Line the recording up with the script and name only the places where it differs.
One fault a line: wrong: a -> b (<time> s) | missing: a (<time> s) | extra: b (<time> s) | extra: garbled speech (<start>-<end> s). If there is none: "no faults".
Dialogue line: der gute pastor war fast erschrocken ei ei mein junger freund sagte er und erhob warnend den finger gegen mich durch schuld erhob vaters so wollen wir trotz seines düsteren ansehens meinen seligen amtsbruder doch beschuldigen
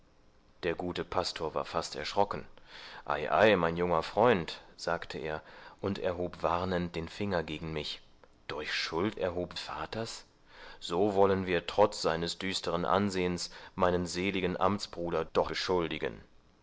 no faults